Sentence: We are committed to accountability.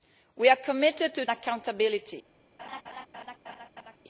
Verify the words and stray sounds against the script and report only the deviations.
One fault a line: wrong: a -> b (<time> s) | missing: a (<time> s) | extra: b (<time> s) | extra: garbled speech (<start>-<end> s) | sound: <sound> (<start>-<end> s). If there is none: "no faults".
sound: laugh (2.6-4.0 s)